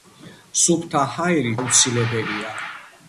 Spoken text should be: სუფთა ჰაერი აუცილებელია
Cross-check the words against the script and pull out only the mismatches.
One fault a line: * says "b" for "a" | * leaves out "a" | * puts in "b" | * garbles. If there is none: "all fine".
all fine